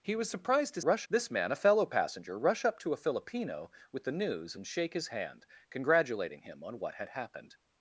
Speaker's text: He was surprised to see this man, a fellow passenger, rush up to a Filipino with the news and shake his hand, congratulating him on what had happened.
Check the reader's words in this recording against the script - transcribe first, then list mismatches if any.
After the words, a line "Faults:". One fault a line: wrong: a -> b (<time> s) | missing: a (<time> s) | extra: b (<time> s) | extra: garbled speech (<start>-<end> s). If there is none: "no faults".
He was surprised to rush this man, a fellow passenger, rush up to a Filipino with the news and shake his hand, congratulating him on what had happened.
Faults:
wrong: see -> rush (0.8 s)